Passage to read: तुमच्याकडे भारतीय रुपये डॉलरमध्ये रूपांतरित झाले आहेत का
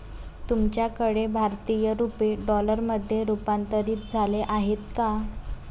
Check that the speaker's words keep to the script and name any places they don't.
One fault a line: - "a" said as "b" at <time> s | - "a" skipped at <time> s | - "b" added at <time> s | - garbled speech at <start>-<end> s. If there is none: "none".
none